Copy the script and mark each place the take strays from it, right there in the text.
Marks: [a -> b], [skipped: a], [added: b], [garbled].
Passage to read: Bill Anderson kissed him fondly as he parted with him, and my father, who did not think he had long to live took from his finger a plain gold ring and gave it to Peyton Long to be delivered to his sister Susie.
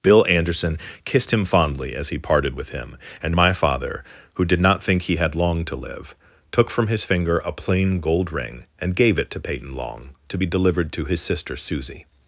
Bill Anderson kissed him fondly as he parted with him, and my father, who did not think he had long to live took from his finger a plain gold ring and gave it to Peyton Long to be delivered to his sister Susie.